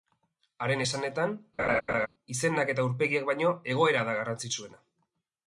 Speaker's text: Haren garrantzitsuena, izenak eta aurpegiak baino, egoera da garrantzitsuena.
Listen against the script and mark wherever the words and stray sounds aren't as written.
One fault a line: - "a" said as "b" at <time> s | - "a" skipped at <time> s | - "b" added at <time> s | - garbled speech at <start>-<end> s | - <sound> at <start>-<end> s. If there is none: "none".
- "garrantzitsuena" said as "esanetan" at 0.8 s
- laugh at 1.6-2.1 s